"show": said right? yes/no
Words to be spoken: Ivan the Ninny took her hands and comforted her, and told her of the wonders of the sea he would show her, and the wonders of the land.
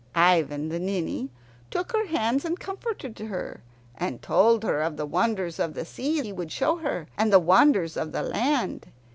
yes